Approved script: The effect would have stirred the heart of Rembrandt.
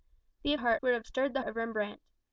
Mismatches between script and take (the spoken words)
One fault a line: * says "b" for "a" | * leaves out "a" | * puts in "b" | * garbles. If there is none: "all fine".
* says "heart" for "effect"
* leaves out "heart"